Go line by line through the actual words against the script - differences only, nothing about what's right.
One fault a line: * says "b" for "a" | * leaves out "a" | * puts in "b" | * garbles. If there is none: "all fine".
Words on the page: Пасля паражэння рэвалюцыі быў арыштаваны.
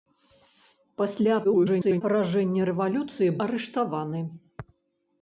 * garbles
* leaves out "быў"